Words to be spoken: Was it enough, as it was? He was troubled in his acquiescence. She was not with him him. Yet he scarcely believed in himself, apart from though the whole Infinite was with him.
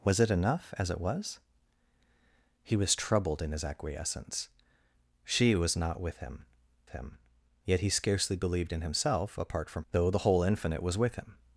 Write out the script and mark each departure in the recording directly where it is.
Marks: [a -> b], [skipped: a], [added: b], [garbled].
Was it enough, as it was? He was troubled in his acquiescence. She was not with him him. Yet he scarcely believed in himself, apart from though the whole Infinite was with him.